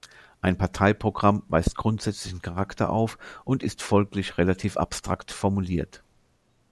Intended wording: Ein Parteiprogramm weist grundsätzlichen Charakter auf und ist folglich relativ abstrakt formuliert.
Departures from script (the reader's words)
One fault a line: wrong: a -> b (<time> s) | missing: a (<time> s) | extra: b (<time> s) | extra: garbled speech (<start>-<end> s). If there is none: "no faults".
no faults